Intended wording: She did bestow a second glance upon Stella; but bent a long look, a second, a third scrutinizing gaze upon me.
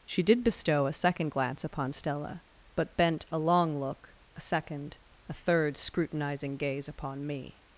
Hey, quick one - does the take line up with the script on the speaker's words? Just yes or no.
yes